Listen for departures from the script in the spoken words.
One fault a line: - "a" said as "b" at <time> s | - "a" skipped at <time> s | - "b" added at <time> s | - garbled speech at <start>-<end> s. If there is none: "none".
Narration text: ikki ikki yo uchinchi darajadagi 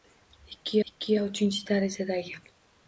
none